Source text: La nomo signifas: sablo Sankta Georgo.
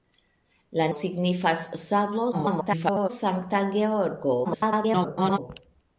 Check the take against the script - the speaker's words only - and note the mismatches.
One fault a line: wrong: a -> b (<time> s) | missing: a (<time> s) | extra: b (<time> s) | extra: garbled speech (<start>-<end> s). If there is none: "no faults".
missing: nomo (0.8 s)
extra: garbled speech (2.3-3.1 s)
extra: garbled speech (4.4-5.4 s)